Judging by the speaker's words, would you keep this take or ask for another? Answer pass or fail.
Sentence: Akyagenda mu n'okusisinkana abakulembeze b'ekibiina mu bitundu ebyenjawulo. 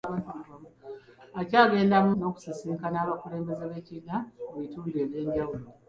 pass